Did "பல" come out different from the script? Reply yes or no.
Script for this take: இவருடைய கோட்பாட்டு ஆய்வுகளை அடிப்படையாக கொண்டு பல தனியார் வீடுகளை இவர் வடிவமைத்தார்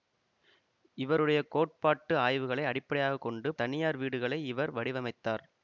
yes